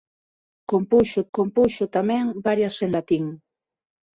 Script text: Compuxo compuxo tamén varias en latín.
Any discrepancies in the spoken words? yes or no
no